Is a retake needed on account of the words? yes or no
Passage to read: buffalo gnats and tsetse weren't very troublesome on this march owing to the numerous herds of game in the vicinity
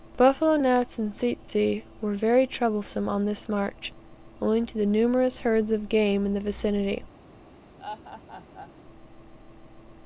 yes